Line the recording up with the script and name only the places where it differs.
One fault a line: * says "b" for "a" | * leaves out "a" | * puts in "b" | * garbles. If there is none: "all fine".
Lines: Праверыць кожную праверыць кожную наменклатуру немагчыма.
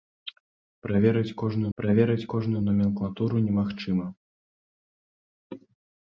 all fine